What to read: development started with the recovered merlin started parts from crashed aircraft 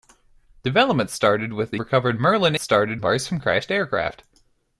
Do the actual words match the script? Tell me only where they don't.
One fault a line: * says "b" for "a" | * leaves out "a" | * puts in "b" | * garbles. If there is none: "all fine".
all fine